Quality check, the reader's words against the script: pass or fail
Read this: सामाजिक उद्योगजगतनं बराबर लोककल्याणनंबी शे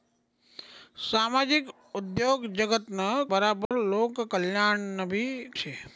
pass